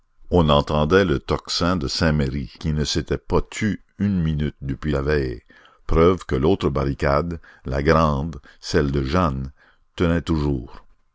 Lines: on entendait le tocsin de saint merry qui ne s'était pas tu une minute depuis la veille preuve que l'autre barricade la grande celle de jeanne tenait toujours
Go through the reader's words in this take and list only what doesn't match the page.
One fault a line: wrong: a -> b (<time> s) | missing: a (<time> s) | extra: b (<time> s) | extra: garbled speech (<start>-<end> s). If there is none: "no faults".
no faults